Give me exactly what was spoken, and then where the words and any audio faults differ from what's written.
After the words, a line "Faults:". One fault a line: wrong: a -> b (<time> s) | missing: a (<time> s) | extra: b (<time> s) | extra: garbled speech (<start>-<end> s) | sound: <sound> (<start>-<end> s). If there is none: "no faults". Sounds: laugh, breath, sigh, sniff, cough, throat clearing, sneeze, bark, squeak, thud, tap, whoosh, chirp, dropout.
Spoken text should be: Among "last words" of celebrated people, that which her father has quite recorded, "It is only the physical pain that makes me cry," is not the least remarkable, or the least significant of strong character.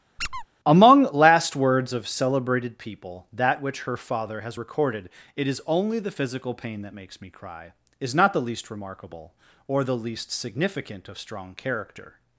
Among "last words" of celebrated people, that which her father has recorded, "It is only the physical pain that makes me cry," is not the least remarkable, or the least significant of strong character.
Faults:
sound: squeak (0.2-0.4 s)
missing: quite (4.6 s)